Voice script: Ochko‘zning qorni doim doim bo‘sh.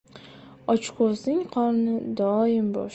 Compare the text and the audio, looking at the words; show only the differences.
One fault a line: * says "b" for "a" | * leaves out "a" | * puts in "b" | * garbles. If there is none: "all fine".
* leaves out "doim"